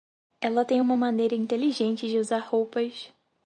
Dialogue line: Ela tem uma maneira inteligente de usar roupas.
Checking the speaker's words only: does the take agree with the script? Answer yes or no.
yes